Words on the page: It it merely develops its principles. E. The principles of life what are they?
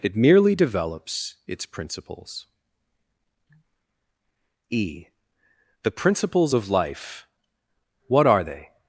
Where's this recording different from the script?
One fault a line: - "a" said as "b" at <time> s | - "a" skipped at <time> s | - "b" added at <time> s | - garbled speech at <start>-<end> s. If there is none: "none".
- "it" skipped at 0.1 s